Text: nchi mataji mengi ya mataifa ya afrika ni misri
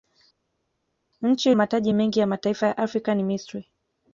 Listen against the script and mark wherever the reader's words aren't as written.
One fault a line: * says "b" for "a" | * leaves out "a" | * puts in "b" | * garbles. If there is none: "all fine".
all fine